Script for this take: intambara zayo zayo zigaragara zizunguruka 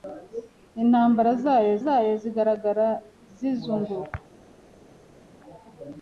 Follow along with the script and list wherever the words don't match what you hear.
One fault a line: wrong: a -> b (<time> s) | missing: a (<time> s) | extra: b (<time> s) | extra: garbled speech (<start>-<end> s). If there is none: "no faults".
no faults